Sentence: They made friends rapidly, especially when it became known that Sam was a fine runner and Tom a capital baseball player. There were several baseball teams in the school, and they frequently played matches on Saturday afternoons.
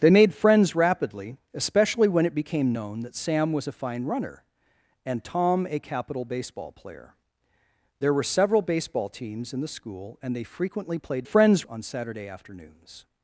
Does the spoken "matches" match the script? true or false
false